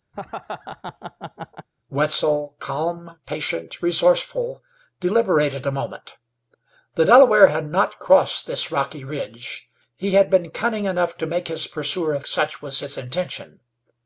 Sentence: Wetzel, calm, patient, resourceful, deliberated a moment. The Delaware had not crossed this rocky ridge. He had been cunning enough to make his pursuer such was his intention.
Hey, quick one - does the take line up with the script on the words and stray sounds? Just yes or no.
no